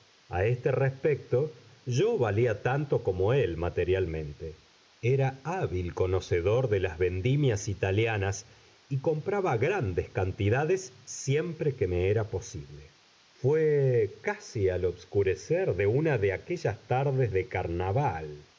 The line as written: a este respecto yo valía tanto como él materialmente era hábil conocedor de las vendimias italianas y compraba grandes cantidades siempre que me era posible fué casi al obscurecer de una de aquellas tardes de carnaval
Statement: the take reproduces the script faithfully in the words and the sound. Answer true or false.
true